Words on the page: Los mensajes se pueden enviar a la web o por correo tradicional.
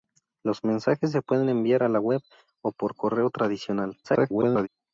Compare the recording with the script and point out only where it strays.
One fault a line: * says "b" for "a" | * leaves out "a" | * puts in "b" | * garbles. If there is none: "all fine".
* garbles